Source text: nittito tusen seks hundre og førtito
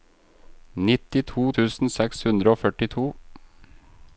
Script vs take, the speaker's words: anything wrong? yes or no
no